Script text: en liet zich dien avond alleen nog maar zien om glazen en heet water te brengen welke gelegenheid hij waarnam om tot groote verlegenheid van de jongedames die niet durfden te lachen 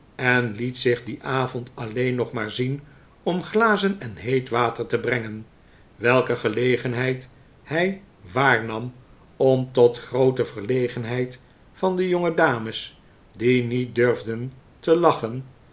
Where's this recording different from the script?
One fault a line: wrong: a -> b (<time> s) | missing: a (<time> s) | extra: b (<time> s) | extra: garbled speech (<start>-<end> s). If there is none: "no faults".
no faults